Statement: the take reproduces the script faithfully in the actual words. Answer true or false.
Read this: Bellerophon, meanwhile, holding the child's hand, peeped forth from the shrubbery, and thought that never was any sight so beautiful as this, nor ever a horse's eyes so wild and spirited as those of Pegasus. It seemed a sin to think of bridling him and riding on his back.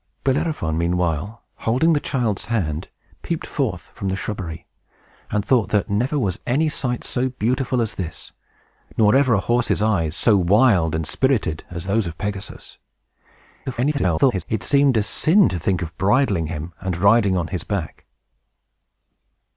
false